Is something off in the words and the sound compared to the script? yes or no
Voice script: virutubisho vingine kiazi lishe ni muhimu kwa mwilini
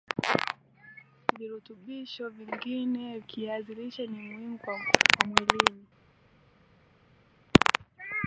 no